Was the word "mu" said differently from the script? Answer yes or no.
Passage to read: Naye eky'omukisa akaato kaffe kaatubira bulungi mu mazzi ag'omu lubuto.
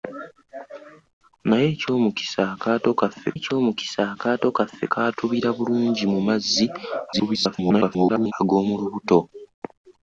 no